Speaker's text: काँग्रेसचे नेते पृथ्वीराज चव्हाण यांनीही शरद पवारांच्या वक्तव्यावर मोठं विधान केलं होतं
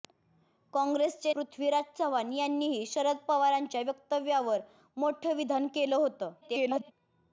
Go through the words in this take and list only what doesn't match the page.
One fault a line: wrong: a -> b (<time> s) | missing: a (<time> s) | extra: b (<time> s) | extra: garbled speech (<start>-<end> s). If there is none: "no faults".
missing: नेते (1.3 s)
extra: garbled speech (6.4-6.9 s)